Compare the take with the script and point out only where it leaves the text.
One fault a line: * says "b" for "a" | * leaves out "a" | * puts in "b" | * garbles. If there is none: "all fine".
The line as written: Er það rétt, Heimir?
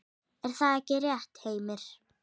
* puts in "ekki"